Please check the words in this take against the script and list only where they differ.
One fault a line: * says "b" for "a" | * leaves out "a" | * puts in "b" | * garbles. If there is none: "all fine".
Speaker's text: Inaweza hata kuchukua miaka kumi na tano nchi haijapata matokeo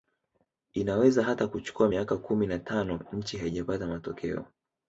all fine